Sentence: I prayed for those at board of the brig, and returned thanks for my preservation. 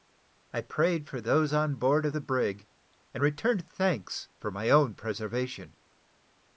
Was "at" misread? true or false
true